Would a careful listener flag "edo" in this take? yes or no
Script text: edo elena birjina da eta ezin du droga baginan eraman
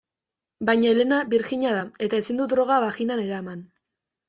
yes